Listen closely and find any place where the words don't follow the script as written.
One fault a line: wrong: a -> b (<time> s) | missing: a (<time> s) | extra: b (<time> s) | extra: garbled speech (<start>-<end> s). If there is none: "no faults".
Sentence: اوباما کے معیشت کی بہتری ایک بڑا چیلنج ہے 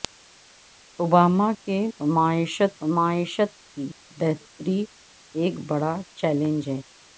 extra: معیشت (2.9 s)